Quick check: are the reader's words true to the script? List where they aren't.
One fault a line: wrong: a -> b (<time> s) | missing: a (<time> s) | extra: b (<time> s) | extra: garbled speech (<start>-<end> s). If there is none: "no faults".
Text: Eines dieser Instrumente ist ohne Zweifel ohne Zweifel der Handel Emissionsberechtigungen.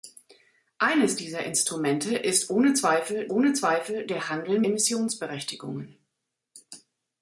no faults